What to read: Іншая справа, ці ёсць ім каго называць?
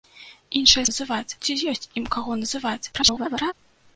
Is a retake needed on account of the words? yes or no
yes